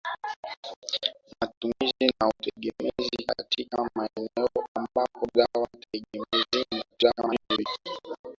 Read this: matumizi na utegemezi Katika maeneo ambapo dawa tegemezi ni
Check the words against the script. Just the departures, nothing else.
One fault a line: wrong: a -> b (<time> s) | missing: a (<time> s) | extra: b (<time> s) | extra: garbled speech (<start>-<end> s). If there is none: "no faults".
extra: garbled speech (6.9-7.7 s)